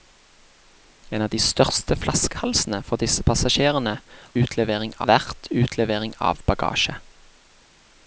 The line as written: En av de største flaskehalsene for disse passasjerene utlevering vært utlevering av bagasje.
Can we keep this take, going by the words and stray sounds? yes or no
yes